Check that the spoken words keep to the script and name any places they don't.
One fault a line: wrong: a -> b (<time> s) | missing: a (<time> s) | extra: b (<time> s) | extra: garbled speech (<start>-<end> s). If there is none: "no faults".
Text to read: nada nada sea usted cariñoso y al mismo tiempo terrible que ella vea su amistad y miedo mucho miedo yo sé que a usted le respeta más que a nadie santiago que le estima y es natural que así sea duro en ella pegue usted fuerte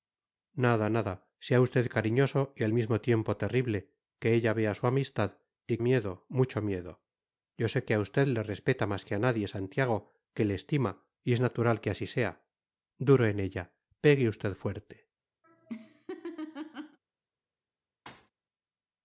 no faults